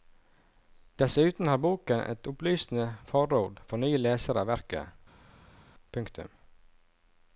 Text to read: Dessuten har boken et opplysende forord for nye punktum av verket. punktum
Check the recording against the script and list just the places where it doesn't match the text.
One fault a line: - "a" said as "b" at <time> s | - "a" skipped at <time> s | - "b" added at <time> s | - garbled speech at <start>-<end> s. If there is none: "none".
- "punktum" said as "lesere" at 4.1 s